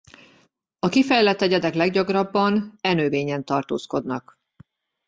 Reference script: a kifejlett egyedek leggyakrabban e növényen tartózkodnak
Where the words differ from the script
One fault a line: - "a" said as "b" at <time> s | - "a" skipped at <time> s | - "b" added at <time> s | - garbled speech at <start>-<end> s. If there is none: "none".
none